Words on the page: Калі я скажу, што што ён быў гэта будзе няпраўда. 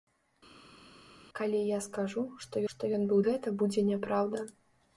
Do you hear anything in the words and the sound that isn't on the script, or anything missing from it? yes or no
no